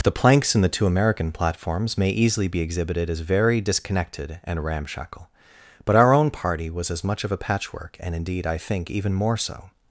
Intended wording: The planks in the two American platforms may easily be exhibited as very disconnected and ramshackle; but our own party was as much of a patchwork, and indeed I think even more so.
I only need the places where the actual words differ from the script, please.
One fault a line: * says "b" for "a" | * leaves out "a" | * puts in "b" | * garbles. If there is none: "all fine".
all fine